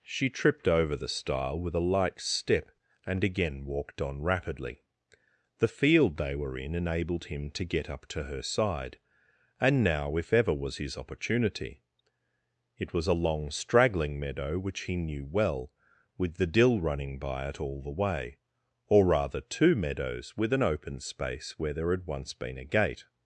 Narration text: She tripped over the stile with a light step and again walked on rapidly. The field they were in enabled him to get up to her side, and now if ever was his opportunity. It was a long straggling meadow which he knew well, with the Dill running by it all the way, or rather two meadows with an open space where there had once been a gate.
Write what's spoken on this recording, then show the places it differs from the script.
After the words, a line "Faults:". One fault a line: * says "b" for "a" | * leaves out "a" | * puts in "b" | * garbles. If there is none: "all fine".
She tripped over the stile with a light step and again walked on rapidly. The field they were in enabled him to get up to her side, and now if ever was his opportunity. It was a long straggling meadow which he knew well, with the Dill running by it all the way, or rather two meadows with an open space where there had once been a gate.
Faults:
all fine